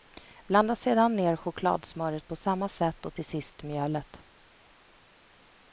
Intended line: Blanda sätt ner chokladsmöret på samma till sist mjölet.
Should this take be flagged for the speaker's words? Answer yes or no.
yes